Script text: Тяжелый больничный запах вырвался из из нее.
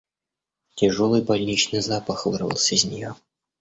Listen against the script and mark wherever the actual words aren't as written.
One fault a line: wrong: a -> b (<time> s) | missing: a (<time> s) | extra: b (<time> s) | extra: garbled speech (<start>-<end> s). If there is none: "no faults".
missing: из (2.8 s)